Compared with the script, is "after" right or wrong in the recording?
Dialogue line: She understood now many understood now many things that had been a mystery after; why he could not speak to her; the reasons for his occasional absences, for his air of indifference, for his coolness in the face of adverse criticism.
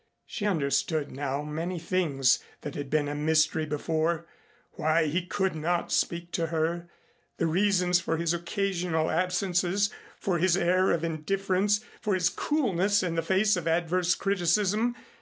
wrong